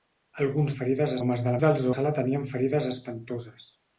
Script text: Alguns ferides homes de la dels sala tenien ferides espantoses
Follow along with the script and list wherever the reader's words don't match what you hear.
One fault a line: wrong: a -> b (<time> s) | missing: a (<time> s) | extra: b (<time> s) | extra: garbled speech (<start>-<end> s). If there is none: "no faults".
no faults